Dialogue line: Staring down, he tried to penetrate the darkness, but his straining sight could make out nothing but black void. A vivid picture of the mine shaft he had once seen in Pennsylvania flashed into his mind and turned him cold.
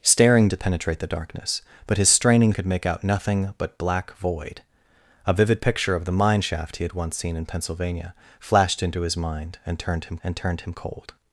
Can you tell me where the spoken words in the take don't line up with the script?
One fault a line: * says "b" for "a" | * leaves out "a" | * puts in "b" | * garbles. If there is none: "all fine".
* leaves out "down he tried"
* leaves out "sight"
* puts in "and turned him"